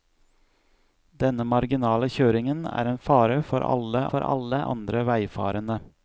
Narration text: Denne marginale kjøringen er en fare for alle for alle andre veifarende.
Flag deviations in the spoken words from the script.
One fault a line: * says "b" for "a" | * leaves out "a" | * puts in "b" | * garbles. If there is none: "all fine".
all fine